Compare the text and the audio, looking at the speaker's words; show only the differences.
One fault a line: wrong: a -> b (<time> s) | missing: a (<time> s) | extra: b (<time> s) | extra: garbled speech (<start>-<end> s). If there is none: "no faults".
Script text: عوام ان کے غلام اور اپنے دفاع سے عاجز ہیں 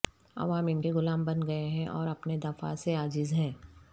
extra: بن گئے ہیں (1.2 s)